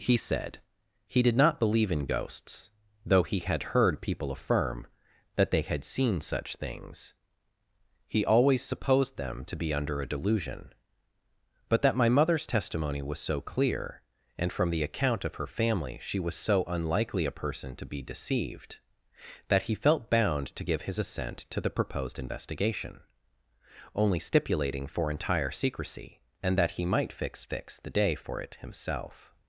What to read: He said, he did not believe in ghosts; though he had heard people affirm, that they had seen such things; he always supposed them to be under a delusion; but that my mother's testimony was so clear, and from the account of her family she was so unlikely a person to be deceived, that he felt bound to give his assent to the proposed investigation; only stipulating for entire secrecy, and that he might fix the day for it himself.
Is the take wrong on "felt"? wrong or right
right